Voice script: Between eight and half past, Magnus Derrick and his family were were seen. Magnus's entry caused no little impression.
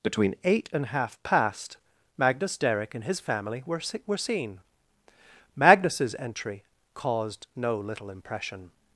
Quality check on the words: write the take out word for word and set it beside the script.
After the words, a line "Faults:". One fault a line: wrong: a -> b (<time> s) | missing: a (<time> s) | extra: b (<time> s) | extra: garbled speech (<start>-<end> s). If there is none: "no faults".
Between eight and half past, Magnus Derrick and his family were were seen. Magnus's entry caused no little impression.
Faults:
no faults